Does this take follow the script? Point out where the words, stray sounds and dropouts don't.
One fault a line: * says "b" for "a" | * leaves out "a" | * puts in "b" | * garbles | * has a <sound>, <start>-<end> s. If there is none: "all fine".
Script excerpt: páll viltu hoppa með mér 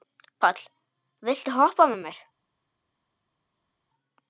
all fine